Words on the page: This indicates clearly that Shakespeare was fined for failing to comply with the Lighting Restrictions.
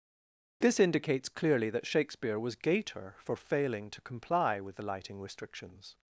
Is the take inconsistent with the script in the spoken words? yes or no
yes